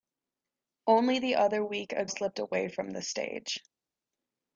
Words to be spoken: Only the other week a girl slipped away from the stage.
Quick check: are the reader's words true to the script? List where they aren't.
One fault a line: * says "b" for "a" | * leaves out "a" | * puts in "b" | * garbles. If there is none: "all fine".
* leaves out "girl"